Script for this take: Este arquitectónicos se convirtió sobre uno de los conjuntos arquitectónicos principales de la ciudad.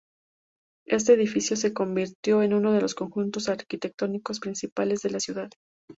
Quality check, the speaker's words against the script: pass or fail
fail